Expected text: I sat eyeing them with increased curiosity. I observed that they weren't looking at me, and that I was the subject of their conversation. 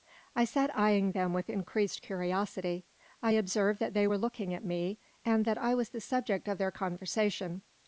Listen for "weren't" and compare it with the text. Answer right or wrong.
wrong